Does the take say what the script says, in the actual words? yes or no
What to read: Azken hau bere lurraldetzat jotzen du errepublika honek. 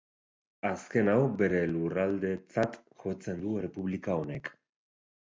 yes